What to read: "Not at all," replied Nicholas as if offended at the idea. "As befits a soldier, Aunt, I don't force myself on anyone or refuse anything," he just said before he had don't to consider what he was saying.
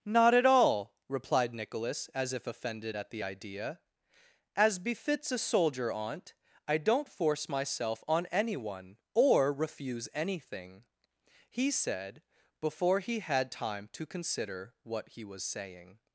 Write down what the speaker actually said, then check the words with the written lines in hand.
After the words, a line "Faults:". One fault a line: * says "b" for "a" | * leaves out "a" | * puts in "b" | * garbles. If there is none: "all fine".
"Not at all," replied Nicholas as if offended at the idea. "As befits a soldier, Aunt, I don't force myself on anyone or refuse anything," he said before he had time to consider what he was saying.
Faults:
* leaves out "just"
* says "time" for "don't"